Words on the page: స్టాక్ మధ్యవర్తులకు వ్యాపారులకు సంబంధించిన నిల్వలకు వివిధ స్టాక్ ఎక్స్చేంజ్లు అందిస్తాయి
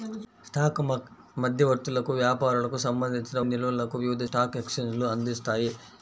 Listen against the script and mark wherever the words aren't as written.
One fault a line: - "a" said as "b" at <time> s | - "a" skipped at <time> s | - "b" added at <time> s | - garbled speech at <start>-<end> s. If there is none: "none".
none